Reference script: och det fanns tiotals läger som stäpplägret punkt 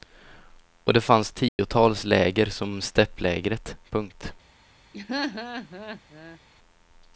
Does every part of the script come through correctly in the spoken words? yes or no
yes